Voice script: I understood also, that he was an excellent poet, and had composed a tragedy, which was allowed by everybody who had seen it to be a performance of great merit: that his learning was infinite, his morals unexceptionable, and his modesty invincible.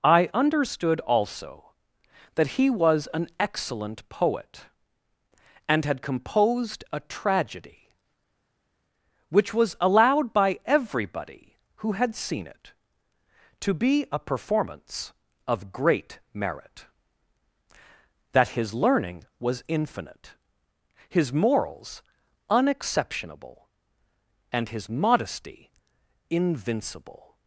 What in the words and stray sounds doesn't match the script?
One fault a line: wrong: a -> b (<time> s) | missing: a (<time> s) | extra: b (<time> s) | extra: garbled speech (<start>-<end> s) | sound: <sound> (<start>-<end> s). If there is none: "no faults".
no faults